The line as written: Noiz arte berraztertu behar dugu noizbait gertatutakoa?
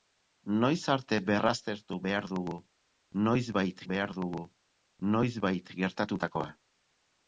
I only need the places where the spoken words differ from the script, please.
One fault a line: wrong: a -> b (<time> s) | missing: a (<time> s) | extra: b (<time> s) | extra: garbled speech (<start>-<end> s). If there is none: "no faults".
extra: behar dugu noizbait (3.9 s)